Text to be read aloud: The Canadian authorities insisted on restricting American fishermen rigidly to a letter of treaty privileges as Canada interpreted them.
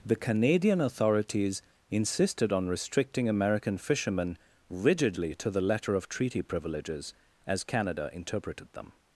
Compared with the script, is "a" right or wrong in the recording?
wrong